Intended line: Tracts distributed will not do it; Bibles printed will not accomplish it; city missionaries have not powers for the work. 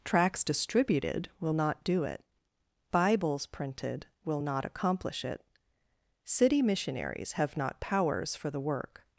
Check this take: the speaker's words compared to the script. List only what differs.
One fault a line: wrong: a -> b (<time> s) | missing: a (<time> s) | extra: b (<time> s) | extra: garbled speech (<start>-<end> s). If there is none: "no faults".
no faults